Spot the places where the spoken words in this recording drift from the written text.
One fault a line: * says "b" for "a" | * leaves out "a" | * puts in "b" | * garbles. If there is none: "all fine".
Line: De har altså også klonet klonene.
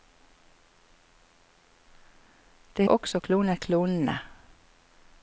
* leaves out "har altså"